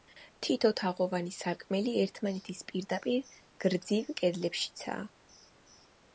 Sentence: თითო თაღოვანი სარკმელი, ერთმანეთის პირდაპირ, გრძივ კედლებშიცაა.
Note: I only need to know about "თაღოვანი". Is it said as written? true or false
true